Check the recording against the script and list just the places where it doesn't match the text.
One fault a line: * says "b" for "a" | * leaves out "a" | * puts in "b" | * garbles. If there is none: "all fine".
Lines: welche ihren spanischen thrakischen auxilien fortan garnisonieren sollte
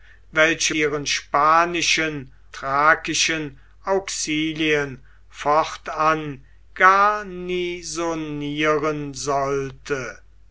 all fine